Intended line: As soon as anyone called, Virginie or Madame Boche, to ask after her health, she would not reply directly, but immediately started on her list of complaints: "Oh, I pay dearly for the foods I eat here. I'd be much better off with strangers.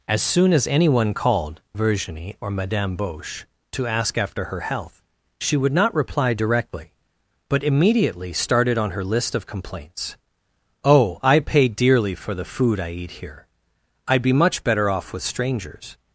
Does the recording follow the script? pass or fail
fail